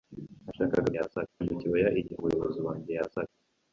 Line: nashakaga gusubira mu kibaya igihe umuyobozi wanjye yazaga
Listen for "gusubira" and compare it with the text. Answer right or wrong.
wrong